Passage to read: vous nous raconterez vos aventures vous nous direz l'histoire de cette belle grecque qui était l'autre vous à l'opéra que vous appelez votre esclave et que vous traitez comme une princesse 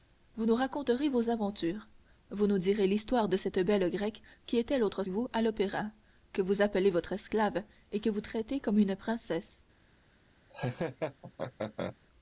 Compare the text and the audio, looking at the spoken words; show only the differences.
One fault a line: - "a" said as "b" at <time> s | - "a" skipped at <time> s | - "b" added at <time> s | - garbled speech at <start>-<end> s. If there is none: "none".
none